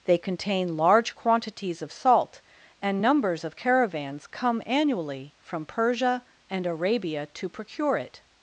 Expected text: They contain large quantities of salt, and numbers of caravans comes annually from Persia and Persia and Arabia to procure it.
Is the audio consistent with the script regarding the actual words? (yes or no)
no